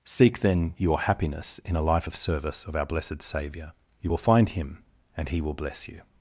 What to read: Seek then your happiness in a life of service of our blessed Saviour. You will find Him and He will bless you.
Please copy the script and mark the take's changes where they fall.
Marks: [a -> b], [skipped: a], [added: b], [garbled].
Seek then your happiness in a life of service of our blessed Saviour. You will find Him and He will bless you.